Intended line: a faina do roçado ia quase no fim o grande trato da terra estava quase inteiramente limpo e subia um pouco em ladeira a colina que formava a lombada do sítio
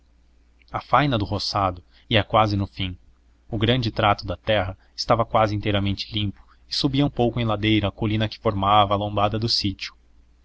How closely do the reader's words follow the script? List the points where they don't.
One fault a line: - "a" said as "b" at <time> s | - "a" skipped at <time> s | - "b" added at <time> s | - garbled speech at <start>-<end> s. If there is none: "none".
none